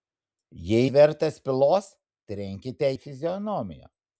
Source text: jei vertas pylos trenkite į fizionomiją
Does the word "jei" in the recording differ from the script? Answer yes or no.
no